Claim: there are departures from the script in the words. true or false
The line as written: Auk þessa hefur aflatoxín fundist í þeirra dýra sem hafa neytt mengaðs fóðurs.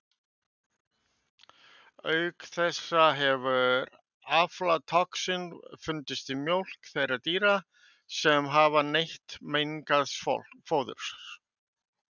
true